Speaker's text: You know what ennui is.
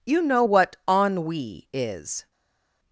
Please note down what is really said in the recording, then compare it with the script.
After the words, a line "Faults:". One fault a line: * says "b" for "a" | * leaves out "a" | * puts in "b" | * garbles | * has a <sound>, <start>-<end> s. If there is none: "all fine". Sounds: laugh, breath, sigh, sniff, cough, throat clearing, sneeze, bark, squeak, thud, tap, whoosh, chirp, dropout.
You know what ennui is.
Faults:
all fine